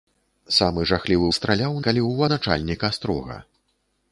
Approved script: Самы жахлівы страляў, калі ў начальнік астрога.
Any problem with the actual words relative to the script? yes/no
no